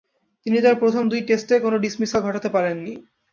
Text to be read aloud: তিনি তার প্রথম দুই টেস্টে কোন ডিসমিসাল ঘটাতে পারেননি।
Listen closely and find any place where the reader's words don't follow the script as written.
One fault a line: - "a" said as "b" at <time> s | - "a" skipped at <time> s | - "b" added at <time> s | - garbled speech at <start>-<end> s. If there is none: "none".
none